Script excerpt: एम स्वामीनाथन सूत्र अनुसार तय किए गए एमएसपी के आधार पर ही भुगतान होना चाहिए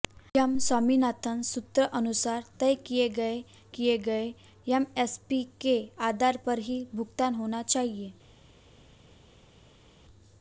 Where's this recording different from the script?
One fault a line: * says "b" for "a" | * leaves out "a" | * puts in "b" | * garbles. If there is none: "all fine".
* puts in "किए गए"